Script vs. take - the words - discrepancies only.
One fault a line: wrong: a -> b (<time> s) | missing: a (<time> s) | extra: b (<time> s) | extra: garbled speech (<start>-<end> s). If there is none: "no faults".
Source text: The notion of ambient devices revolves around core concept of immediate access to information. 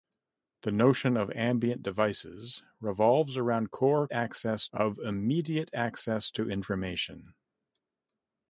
wrong: concept -> access (4.1 s)